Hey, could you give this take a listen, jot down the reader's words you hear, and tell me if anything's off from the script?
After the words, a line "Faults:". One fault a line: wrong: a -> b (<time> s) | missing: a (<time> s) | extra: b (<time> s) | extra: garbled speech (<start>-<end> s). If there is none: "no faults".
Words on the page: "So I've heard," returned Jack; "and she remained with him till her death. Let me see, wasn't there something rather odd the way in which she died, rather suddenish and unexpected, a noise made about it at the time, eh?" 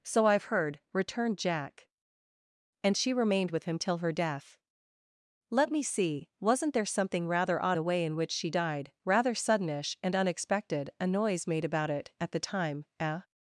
"So I've heard," returned Jack; "and she remained with him till her death. Let me see, wasn't there something rather odd the way in which she died, rather suddenish and unexpected, a noise made about it at the time, eh?"
Faults:
no faults